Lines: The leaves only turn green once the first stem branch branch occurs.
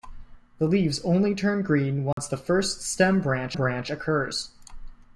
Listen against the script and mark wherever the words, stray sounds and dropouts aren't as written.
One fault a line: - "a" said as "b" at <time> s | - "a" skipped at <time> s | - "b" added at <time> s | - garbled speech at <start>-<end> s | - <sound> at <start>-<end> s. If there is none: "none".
- dropout at 2.1-2.2 s